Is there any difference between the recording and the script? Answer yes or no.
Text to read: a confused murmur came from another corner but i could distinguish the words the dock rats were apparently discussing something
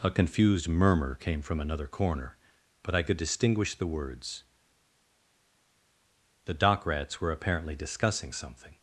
no